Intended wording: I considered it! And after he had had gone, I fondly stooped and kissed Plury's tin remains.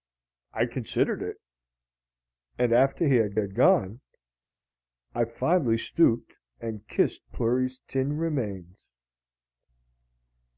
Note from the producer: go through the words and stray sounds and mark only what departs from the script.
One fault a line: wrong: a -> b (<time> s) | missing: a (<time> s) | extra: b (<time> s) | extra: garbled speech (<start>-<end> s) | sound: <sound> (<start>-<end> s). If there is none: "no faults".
no faults